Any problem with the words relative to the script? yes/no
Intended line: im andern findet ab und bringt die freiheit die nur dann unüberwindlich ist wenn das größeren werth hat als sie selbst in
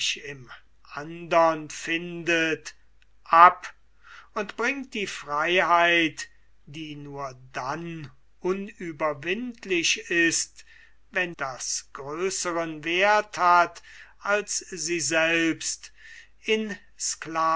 no